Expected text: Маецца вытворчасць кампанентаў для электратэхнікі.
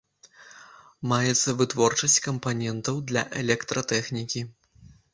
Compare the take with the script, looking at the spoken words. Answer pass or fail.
pass